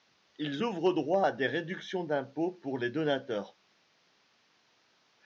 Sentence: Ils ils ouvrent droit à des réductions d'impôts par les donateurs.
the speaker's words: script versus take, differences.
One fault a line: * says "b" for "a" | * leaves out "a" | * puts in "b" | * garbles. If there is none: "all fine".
* leaves out "ils"
* says "pour" for "par"